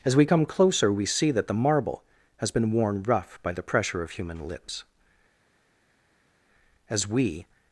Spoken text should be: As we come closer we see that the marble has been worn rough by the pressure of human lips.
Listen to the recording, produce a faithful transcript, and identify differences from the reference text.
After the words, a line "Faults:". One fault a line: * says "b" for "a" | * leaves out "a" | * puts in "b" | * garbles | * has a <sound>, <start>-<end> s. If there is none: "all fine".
As we come closer we see that the marble has been worn rough by the pressure of human lips. As we
Faults:
* puts in "As we"